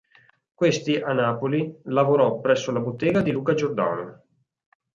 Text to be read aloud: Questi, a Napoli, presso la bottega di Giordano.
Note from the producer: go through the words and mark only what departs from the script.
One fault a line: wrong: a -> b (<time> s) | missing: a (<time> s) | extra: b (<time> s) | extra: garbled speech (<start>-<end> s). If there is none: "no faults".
extra: lavorò (1.8 s)
extra: Luca (3.3 s)